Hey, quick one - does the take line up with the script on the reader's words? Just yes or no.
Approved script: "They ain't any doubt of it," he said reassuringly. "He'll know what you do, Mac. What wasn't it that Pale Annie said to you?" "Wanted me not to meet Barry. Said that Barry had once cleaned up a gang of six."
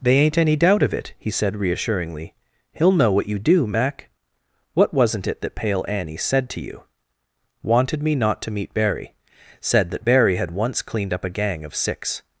yes